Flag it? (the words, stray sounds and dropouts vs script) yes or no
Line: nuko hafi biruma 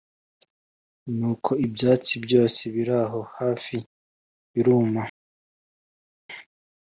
yes